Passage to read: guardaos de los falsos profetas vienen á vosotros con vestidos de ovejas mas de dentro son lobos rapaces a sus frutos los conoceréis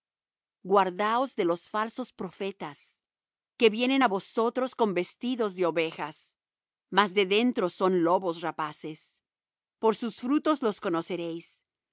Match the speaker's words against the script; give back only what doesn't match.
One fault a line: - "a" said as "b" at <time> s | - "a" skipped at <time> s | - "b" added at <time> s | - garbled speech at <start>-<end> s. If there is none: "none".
- "que" added at 3.6 s
- "a" said as "por" at 9.8 s